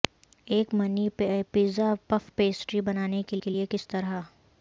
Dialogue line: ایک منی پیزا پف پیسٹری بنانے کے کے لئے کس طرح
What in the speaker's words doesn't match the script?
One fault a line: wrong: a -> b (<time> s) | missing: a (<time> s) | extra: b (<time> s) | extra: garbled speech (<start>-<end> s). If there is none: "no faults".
no faults